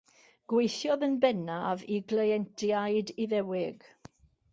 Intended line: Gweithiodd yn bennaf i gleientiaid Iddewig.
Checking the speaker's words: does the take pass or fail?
pass